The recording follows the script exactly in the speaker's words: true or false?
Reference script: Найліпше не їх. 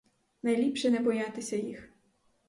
false